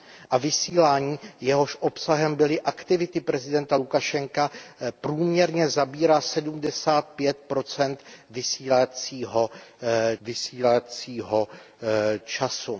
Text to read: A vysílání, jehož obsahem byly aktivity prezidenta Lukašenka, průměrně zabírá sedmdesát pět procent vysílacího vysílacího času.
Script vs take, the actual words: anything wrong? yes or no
no